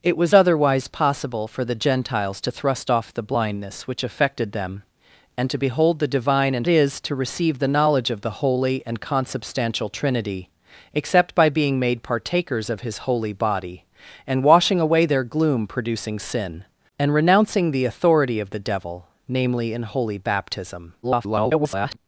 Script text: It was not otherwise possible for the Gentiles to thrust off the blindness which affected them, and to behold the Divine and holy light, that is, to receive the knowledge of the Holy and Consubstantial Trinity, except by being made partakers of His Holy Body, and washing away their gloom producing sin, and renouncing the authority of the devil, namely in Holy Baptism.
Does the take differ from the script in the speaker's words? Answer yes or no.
yes